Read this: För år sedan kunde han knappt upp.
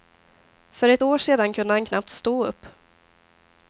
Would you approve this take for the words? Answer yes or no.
no